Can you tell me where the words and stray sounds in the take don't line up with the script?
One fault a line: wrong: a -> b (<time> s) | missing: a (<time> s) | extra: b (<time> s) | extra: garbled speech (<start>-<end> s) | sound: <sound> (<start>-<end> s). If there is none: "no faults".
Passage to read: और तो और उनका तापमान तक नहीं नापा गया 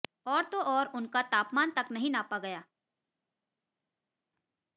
no faults